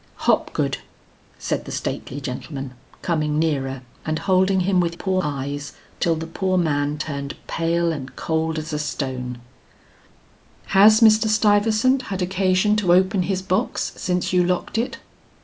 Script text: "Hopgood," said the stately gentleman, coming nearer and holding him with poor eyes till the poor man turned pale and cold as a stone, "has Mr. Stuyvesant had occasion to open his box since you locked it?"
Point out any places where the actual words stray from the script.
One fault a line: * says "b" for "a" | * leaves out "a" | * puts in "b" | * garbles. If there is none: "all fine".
all fine